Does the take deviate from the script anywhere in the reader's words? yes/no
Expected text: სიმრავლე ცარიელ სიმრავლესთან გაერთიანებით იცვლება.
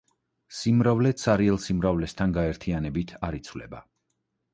yes